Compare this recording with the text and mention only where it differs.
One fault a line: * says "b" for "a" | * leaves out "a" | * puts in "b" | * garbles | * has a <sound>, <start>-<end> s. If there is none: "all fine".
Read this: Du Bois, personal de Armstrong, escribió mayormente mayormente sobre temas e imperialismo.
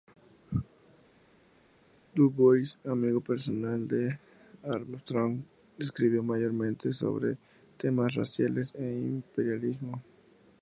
* puts in "amigo"
* leaves out "mayormente"
* puts in "raciales"